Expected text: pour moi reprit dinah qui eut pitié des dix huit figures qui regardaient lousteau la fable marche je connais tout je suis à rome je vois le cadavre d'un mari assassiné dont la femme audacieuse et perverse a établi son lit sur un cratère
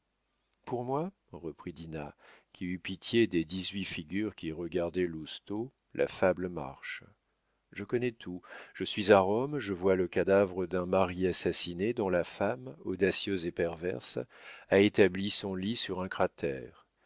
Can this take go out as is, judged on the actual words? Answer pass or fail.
pass